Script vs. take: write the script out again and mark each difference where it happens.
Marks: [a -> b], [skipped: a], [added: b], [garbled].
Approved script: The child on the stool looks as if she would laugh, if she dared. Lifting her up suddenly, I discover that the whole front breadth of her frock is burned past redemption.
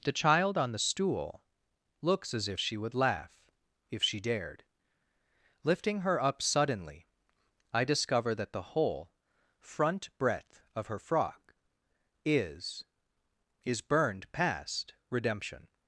The child on the stool looks as if she would laugh, if she dared. Lifting her up suddenly, I discover that the whole front breadth of her frock is [added: is] burned past redemption.